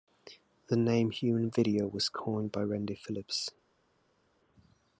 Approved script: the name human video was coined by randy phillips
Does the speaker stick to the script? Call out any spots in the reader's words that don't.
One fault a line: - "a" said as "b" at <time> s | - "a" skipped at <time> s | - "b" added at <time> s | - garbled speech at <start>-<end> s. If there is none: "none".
none